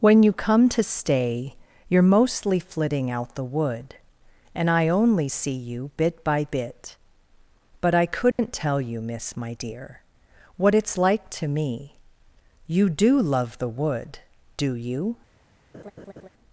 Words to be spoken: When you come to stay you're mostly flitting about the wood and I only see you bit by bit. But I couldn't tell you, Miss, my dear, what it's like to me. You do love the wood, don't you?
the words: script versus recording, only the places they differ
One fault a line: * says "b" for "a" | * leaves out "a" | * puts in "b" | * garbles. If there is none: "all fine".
* says "out" for "about"
* says "do" for "don't"